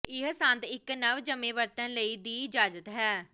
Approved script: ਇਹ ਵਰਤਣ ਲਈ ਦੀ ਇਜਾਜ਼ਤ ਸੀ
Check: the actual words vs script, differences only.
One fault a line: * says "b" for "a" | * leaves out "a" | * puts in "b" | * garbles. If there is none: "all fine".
* puts in "ਸੰਦ ਇੱਕ ਨਵਜੰਮੇ"
* says "ਹੈ" for "ਸੀ"